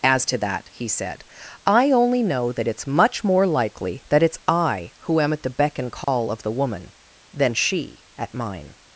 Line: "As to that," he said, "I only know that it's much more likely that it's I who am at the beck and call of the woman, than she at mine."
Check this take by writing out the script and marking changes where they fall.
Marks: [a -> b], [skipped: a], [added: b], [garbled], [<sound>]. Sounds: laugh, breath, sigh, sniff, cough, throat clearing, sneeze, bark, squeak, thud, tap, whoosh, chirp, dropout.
"As to that," he said, "I only know that it's much more likely that it's I who am at the beck and call [dropout] of the woman, than she at mine."